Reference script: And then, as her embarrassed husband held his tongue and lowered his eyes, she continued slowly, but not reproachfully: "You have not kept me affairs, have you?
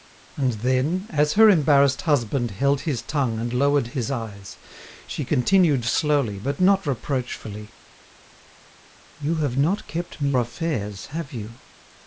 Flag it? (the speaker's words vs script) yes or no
no